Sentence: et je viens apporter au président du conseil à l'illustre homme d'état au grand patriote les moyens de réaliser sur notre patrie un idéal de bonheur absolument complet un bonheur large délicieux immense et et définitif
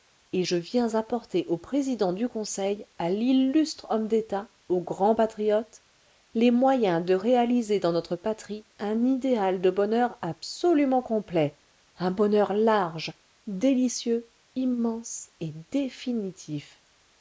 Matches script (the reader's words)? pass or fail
fail